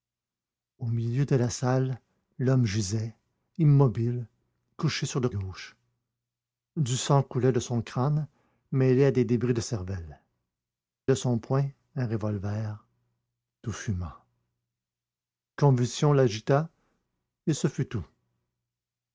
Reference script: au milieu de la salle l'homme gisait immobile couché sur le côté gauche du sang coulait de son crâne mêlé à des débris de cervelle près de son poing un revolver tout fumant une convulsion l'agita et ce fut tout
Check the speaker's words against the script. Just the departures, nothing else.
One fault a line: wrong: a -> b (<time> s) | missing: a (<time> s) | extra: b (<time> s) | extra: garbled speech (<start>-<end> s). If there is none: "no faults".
missing: côté (5.3 s)
missing: près (10.2 s)
missing: une (14.1 s)